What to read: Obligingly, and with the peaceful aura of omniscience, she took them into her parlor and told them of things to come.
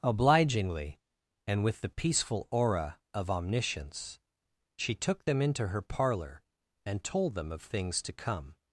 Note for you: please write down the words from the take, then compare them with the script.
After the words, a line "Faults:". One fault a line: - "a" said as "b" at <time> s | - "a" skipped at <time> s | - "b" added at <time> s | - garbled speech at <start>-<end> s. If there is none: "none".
Obligingly, and with the peaceful aura of omniscience, she took them into her parlor and told them of things to come.
Faults:
none